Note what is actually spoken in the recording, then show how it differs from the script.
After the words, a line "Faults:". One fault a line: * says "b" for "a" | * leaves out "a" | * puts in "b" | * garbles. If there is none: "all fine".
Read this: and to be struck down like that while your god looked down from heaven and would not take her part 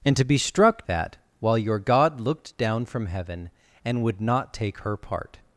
and to be struck that while your god looked down from heaven and would not take her part
Faults:
* leaves out "down like"